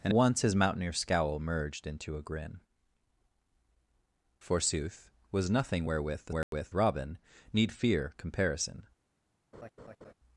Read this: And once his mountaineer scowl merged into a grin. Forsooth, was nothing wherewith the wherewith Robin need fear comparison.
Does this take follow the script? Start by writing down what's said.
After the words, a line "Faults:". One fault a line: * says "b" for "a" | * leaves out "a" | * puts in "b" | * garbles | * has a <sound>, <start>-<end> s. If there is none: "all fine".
And once his mountaineer scowl merged into a grin. Forsooth, was nothing wherewith the wherewith Robin need fear comparison.
Faults:
* has a dropout, 6.4-6.5 s
* has a laugh, 9.5-10.1 s